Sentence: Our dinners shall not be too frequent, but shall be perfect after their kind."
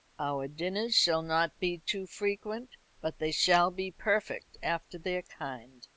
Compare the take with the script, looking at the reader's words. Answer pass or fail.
fail